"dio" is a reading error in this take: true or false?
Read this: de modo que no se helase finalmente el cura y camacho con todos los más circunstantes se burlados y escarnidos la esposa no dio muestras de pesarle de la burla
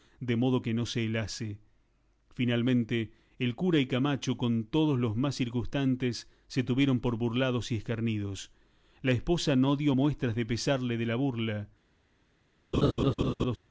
false